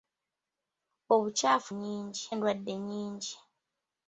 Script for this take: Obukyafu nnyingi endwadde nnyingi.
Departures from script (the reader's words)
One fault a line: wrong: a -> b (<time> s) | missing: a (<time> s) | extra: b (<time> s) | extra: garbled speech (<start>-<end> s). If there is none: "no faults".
no faults